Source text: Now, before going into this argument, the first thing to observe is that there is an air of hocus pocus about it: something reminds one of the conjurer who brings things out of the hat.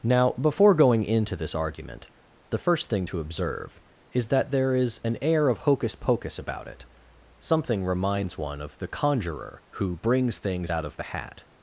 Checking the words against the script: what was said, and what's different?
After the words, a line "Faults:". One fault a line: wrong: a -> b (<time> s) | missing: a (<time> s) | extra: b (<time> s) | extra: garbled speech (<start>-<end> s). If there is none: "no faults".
Now, before going into this argument, the first thing to observe is that there is an air of hocus pocus about it: something reminds one of the conjurer who brings things out of the hat.
Faults:
no faults